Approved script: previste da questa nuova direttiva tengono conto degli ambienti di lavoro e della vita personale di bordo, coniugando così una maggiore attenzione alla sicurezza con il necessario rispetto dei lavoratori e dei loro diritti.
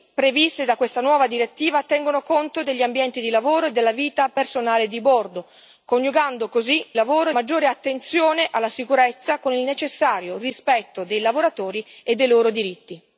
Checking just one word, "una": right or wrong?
wrong